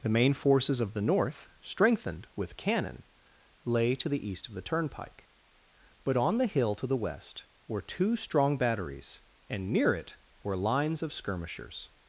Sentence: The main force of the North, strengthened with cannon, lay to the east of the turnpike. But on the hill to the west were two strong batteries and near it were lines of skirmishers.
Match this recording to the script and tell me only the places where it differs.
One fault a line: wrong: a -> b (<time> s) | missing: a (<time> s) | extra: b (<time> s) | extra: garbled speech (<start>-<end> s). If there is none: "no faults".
wrong: force -> forces (0.3 s)